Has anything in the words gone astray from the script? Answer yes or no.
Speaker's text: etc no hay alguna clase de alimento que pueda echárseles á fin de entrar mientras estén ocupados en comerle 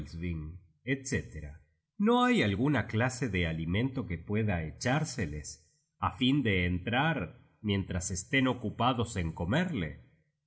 no